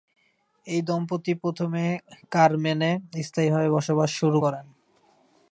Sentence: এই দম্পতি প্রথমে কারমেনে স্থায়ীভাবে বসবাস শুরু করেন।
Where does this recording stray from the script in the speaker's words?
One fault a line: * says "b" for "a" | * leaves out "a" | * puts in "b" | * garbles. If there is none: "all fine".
all fine